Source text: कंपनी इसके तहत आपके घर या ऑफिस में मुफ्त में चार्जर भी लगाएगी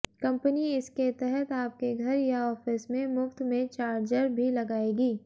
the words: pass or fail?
pass